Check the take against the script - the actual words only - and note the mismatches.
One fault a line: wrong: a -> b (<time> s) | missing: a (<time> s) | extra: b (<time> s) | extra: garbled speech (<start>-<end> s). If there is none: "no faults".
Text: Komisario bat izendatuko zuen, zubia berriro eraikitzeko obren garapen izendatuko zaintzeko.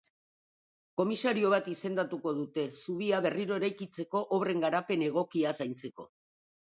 wrong: zuen -> dute (2.4 s)
wrong: izendatuko -> egokia (5.1 s)